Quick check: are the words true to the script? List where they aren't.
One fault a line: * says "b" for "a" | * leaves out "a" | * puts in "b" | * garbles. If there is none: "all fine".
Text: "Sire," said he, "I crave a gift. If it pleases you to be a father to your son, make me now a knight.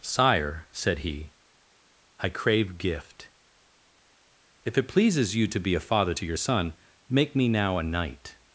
* leaves out "a"